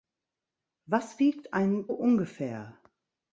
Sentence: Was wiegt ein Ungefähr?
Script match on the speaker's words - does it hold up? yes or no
yes